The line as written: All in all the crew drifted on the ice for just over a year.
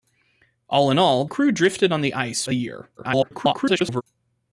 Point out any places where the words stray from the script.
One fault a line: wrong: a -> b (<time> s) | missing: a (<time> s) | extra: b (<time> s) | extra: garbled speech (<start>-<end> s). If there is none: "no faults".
missing: the (1.2 s)
missing: for just over (2.4 s)
extra: garbled speech (3.0-4.0 s)